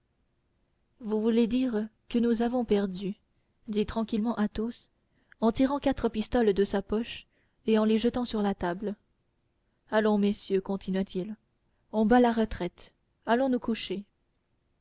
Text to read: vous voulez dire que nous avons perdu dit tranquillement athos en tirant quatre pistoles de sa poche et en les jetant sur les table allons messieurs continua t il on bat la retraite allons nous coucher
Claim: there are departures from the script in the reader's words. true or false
true